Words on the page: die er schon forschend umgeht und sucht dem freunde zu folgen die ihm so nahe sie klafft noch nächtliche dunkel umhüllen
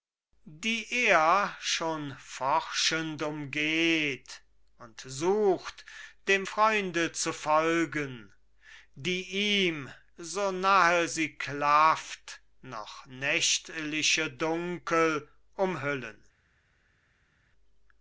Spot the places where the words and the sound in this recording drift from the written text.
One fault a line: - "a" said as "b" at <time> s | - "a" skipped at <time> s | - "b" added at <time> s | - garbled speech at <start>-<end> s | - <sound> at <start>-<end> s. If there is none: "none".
none